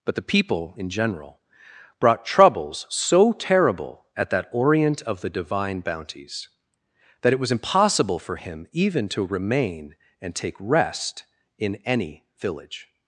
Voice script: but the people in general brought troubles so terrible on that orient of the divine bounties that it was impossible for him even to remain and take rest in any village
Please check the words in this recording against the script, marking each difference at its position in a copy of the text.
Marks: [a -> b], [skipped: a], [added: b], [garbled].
but the people in general brought troubles so terrible [on -> at] that orient of the divine bounties that it was impossible for him even to remain and take rest in any village